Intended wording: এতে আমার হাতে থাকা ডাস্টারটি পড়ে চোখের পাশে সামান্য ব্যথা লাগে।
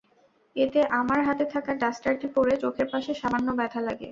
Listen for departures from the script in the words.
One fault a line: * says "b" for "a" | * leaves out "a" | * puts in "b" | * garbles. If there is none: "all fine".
all fine